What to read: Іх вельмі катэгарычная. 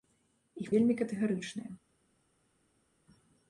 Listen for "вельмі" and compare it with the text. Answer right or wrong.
right